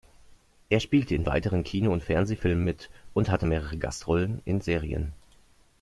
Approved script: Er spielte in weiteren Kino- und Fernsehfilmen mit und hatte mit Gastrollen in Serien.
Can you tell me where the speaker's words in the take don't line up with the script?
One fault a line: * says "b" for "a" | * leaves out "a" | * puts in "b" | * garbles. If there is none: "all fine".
* says "mehrere" for "mit"